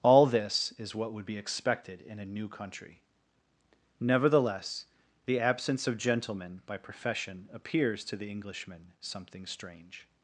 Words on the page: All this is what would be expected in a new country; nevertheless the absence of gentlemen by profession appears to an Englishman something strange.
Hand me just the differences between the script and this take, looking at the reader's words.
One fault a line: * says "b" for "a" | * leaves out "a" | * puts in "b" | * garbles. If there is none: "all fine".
* says "the" for "an"